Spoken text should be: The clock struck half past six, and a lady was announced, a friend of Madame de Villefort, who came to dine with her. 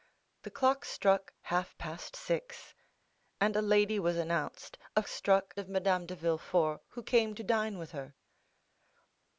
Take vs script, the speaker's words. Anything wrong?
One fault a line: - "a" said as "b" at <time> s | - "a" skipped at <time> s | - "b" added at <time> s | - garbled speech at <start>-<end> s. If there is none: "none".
- "friend" said as "struck" at 5.1 s